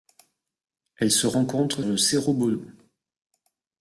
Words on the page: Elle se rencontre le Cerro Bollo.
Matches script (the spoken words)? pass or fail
pass